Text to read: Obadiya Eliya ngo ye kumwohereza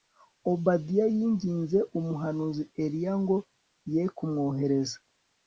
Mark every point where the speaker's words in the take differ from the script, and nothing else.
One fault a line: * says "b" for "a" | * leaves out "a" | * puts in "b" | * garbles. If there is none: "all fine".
* puts in "yinginze umuhanuzi"